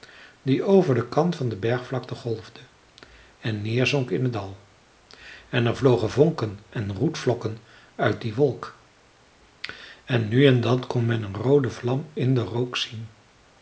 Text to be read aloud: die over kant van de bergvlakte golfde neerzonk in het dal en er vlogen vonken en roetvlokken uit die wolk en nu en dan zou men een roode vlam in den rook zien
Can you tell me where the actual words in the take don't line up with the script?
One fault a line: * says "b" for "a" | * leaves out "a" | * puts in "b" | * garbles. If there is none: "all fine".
* puts in "den"
* puts in "en"
* says "kon" for "zou"